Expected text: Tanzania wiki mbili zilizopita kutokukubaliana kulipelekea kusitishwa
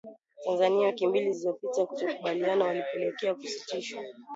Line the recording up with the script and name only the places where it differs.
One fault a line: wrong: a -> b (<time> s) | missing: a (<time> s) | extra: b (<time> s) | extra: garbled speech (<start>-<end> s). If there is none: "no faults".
no faults